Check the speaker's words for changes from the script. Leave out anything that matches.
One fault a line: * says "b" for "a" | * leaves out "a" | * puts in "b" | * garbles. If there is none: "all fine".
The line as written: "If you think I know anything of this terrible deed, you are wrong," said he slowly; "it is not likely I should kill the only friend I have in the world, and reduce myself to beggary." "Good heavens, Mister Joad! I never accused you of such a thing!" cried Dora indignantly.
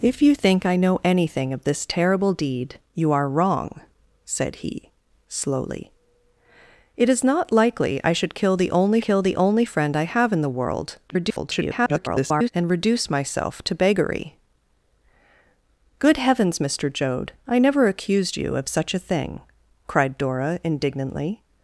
* puts in "kill the only"
* garbles